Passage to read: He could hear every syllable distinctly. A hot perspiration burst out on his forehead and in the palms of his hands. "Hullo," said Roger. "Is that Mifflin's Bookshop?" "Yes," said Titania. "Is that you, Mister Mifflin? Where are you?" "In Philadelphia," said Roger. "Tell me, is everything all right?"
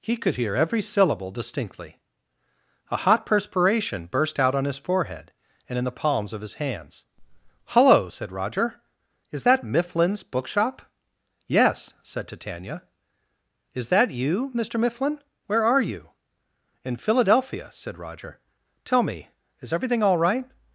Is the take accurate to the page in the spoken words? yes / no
yes